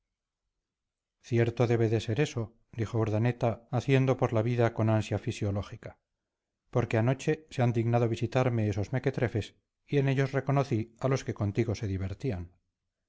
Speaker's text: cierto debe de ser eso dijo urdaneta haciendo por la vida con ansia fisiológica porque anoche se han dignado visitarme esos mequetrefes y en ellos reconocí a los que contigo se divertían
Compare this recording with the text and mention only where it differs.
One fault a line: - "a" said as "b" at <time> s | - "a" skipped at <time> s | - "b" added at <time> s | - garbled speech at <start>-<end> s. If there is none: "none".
none